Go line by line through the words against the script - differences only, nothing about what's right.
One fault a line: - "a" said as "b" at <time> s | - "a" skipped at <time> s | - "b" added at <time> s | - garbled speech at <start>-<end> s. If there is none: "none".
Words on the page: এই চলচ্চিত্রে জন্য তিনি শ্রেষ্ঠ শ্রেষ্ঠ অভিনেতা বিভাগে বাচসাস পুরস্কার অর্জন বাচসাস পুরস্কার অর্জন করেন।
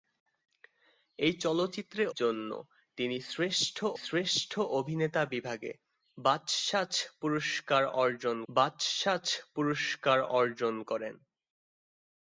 none